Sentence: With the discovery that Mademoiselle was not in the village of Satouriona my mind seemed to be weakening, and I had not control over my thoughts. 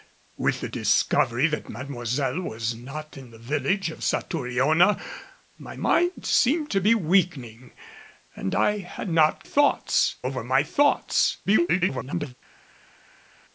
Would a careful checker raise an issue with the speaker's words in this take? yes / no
yes